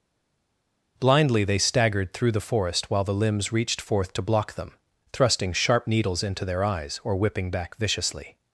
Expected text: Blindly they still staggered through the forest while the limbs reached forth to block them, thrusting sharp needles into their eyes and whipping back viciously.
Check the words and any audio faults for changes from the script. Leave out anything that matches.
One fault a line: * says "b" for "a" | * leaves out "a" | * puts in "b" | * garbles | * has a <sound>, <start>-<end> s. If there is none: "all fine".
* leaves out "still"
* says "or" for "and"